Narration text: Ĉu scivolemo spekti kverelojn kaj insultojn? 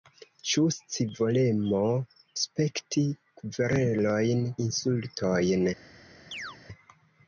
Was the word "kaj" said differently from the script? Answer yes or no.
yes